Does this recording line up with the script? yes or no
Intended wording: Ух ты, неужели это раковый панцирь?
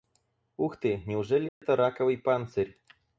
yes